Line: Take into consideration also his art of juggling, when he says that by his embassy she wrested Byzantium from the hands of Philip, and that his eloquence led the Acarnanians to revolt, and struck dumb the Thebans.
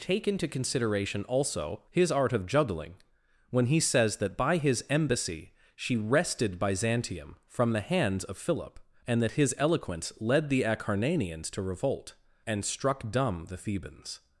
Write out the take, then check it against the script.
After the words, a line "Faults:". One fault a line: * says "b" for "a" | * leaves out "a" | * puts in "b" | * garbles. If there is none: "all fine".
Take into consideration also his art of juggling, when he says that by his embassy she wrested Byzantium from the hands of Philip, and that his eloquence led the Acarnanians to revolt, and struck dumb the Thebans.
Faults:
all fine